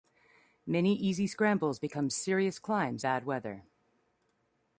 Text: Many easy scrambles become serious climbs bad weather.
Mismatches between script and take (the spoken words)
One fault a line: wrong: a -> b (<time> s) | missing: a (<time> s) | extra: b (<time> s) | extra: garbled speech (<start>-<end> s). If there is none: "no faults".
no faults